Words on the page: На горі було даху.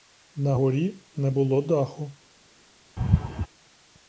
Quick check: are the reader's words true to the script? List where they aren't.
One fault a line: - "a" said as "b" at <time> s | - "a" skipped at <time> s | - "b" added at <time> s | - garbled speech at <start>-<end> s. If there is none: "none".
- "не" added at 1.2 s